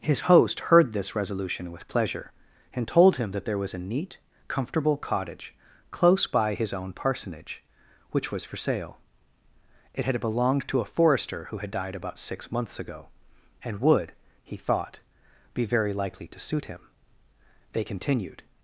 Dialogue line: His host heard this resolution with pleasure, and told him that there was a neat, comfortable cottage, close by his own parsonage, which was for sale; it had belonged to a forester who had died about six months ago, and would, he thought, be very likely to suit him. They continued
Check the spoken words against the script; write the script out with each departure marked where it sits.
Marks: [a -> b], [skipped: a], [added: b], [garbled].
His host heard this resolution with pleasure, and told him that there was a neat, comfortable cottage, close by his own parsonage, which was for sale; it had belonged to a forester who had died about six months ago, and would, he thought, be very likely to suit him. They continued